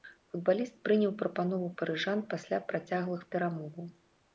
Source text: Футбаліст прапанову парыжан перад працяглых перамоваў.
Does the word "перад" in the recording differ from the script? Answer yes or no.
yes